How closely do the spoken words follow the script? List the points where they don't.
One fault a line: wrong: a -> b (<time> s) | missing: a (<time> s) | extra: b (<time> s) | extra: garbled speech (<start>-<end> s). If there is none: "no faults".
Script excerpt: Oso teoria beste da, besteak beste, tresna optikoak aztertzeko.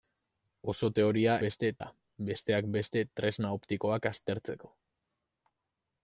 no faults